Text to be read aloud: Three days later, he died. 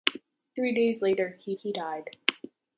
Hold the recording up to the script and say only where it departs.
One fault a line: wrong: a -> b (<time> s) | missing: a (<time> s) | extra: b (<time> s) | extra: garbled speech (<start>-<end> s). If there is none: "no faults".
extra: he (1.6 s)